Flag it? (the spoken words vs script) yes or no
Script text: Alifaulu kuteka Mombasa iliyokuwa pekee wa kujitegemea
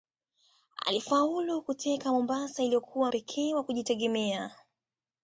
no